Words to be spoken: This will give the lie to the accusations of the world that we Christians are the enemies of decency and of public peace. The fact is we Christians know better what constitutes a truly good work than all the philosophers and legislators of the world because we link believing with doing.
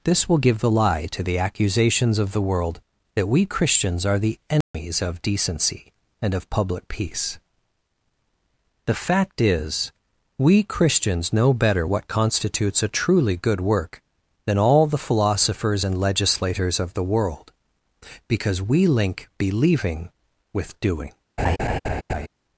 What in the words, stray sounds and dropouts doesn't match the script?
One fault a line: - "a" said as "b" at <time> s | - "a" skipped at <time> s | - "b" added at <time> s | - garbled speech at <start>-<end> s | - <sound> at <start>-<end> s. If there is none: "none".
- dropout at 4.6-4.7 s
- laugh at 21.4-22.3 s